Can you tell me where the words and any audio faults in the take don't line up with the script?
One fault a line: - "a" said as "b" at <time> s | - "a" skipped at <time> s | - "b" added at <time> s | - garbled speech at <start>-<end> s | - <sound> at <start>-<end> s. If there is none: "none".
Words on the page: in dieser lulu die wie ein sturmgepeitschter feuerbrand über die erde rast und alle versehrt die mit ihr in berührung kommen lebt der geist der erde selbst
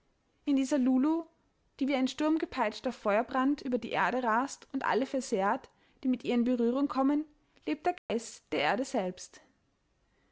- dropout at 8.0-8.1 s